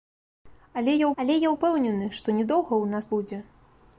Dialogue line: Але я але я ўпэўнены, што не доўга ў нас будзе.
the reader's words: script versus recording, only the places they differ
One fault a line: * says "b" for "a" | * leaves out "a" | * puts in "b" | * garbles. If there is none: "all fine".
all fine